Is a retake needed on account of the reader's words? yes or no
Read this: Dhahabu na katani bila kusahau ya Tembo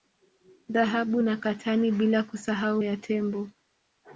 no